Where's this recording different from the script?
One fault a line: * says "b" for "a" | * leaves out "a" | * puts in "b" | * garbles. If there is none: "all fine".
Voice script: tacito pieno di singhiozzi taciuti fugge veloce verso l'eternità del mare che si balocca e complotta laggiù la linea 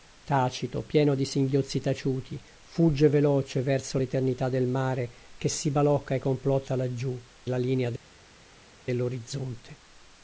all fine